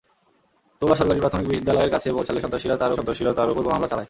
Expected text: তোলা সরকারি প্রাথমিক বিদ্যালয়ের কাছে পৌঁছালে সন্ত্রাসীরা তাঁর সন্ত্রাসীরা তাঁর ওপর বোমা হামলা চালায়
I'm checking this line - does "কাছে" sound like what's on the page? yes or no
yes